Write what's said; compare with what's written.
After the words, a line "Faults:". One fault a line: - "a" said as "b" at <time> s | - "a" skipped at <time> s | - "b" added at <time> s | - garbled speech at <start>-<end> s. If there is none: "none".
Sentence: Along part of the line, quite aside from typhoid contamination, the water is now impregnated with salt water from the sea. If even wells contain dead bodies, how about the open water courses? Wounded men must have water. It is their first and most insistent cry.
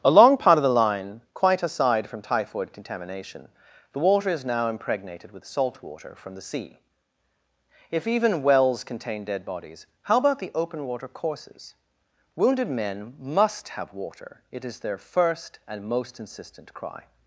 Along part of the line, quite aside from typhoid contamination, the water is now impregnated with salt water from the sea. If even wells contain dead bodies, how about the open water courses? Wounded men must have water. It is their first and most insistent cry.
Faults:
none